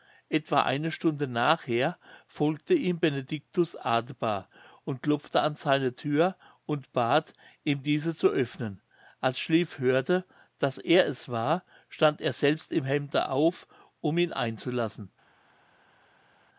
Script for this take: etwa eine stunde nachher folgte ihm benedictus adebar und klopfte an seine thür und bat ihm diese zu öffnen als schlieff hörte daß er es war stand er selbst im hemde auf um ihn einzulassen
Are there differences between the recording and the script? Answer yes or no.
no